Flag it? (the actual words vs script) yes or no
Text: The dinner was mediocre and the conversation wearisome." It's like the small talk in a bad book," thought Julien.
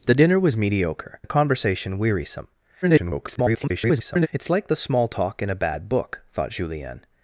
yes